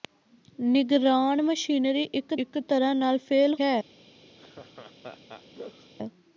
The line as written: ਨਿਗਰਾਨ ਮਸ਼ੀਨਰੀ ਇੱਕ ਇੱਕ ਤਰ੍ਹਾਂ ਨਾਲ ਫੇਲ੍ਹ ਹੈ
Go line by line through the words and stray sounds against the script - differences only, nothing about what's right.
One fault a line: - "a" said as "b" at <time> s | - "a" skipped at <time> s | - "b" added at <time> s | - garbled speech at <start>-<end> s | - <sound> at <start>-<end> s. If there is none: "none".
- laugh at 4.4-5.9 s